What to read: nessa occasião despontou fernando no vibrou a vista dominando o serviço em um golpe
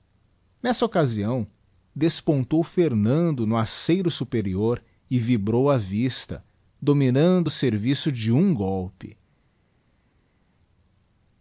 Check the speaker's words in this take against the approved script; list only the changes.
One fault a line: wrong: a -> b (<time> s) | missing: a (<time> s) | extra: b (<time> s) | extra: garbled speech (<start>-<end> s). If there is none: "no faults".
extra: aceiro superior e (3.5 s)
wrong: em -> de (8.1 s)